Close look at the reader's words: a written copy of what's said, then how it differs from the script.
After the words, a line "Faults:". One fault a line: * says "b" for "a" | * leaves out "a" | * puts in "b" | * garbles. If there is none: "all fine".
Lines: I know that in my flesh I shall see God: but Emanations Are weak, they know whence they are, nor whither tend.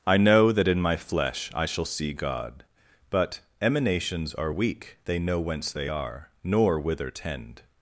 I know that in my flesh I shall see God: but Emanations Are weak, they know whence they are, nor whither tend.
Faults:
all fine